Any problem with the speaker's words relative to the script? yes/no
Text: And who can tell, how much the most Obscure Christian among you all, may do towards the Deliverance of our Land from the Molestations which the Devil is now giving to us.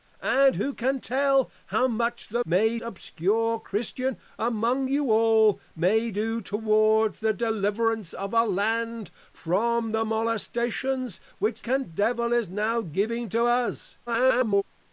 yes